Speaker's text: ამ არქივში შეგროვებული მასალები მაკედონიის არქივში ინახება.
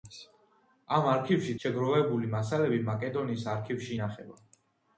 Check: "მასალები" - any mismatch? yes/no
no